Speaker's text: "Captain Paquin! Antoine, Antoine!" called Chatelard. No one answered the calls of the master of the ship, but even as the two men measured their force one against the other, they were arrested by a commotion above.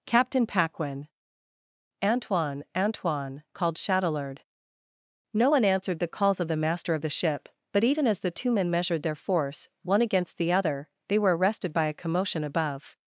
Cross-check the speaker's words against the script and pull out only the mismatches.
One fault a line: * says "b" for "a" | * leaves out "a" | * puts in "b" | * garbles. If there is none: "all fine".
all fine